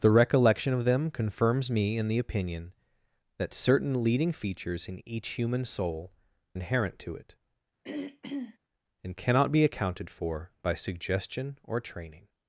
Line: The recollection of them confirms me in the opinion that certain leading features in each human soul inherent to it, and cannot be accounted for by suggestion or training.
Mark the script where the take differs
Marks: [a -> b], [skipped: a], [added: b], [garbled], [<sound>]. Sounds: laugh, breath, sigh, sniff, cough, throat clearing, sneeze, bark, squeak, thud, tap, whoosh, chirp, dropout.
The recollection of them confirms me in the opinion that certain leading features in each human soul inherent to it, [throat clearing] and cannot be accounted for by suggestion or training.